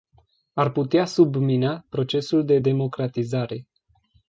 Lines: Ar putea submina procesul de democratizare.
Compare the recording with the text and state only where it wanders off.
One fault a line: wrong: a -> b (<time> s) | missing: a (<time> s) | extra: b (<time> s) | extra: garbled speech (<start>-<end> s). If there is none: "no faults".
no faults